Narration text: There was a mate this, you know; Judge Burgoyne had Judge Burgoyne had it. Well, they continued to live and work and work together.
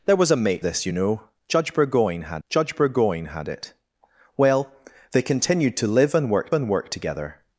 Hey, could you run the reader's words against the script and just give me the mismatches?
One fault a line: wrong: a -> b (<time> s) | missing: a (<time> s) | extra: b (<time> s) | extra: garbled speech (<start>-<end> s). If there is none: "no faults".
no faults